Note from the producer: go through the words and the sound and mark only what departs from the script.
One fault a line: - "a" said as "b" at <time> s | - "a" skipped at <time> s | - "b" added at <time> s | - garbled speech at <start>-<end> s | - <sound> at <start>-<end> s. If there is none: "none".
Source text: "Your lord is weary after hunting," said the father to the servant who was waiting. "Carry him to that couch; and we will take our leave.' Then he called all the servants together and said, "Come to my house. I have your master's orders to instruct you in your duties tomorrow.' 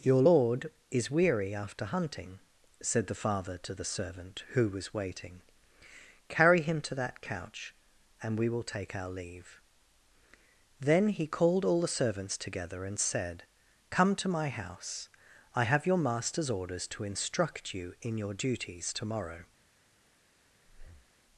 - breath at 20.6-21.1 s